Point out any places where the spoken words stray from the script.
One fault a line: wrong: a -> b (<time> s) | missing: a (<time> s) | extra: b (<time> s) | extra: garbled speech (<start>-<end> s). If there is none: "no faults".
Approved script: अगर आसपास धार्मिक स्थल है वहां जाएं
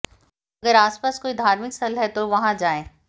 extra: कोई (1.2 s)
extra: तो (2.1 s)